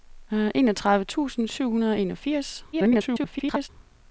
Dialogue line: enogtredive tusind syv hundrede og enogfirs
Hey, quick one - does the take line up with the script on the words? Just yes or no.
no